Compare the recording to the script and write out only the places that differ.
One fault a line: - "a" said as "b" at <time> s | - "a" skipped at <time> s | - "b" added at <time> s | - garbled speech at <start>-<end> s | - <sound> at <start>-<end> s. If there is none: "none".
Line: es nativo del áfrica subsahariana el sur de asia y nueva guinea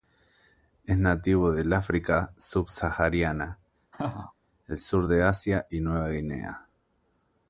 - laugh at 3.9-4.3 s